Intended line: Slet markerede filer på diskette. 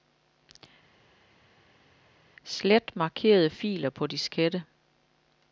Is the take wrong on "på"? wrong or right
right